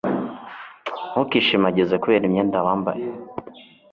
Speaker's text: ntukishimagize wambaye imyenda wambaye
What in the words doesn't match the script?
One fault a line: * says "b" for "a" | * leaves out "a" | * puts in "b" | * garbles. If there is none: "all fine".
* says "kubera" for "wambaye"